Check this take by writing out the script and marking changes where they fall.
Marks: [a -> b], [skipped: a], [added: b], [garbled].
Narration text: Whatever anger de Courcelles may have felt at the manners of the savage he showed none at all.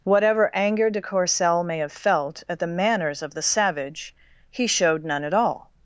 Whatever anger de Courcelles may have felt at the manners of the savage he showed none at all.